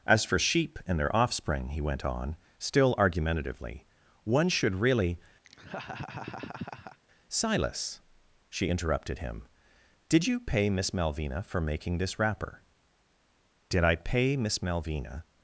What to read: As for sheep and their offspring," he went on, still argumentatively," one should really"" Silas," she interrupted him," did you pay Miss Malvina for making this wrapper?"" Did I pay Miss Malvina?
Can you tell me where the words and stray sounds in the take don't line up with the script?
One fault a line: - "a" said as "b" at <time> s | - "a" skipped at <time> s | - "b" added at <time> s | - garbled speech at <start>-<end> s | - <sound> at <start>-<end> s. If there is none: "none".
- laugh at 5.4-7.0 s